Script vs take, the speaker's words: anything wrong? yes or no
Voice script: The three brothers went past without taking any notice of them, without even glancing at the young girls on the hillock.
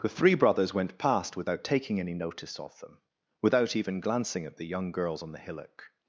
no